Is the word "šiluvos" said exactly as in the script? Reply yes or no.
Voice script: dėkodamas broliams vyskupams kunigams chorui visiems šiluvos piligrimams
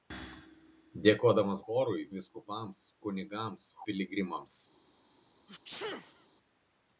no